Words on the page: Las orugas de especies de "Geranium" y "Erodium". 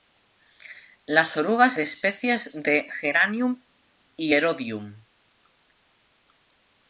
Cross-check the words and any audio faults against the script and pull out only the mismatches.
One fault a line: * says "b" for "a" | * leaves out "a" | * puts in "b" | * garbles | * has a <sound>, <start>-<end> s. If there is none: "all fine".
all fine